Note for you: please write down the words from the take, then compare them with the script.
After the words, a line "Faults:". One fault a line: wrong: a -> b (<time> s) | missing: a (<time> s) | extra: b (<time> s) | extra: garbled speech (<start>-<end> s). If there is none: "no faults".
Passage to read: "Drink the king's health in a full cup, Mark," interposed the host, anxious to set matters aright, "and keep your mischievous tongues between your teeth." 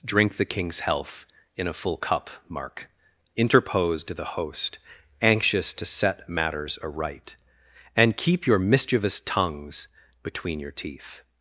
"Drink the king's health in a full cup, Mark," interposed the host, anxious to set matters aright, "and keep your mischievous tongues between your teeth."
Faults:
no faults